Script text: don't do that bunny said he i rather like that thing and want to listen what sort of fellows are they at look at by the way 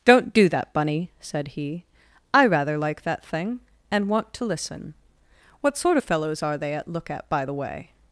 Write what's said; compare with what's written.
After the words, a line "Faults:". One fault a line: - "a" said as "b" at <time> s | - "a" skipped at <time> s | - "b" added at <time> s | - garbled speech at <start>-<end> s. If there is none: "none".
don't do that bunny said he i rather like that thing and want to listen what sort of fellows are they at look at by the way
Faults:
none